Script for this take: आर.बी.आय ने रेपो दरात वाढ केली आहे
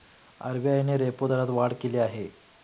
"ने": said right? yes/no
yes